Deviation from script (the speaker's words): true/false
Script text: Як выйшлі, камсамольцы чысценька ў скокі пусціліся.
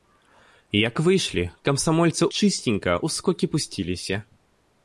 false